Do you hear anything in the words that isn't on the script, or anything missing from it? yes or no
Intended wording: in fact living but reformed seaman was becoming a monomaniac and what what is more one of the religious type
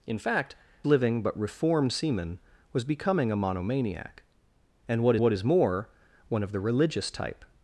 no